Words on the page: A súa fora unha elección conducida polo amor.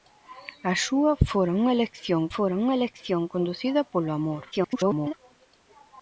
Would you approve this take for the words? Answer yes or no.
no